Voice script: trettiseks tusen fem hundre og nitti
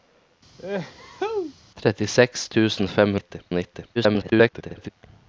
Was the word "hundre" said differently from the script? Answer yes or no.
yes